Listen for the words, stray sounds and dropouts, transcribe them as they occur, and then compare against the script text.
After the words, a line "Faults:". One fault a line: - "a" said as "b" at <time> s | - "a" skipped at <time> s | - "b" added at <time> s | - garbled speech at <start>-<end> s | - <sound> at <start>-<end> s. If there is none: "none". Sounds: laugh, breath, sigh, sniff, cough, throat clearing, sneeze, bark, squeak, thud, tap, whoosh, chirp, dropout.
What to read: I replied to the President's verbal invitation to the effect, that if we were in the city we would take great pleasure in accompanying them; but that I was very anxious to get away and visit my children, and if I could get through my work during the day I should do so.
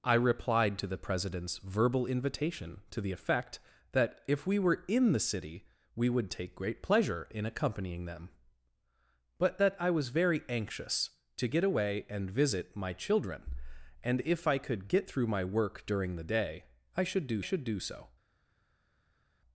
I replied to the President's verbal invitation to the effect, that if we were in the city we would take great pleasure in accompanying them; but that I was very anxious to get away and visit my children, and if I could get through my work during the day I should do should do so.
Faults:
- "should do" added at 17.4 s